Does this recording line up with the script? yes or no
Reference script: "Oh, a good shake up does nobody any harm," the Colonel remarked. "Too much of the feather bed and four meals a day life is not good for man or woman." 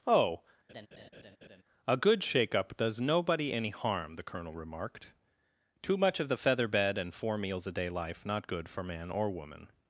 no